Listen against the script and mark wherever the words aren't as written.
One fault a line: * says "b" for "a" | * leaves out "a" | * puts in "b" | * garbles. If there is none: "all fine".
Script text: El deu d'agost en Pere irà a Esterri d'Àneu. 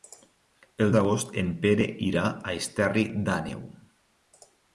* leaves out "deu"